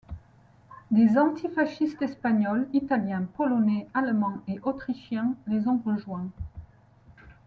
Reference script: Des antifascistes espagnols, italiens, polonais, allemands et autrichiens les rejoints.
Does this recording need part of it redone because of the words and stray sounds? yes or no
yes